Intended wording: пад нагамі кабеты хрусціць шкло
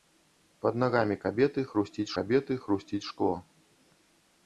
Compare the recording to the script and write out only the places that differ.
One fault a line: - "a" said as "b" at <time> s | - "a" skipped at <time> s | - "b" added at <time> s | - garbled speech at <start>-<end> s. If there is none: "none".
- "кабеты хрусціць" added at 2.2 s